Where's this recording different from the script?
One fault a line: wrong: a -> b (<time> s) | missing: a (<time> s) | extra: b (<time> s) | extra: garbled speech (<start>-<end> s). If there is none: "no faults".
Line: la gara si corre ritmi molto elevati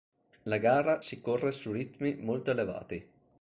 extra: su (1.5 s)